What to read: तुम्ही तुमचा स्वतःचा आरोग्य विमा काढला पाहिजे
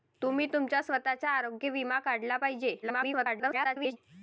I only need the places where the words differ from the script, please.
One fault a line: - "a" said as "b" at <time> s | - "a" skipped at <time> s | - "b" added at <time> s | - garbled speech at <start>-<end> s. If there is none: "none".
- garbled speech at 2.8-4.0 s